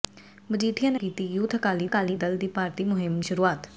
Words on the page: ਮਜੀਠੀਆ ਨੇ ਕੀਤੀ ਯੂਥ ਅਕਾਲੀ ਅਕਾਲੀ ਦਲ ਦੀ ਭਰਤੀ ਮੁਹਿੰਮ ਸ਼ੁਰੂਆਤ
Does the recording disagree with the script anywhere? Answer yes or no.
no